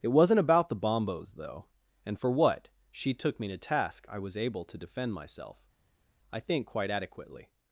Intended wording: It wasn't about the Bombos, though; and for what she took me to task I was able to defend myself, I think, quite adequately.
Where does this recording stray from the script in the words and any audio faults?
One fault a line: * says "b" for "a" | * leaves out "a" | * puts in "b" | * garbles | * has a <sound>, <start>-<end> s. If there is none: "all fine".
all fine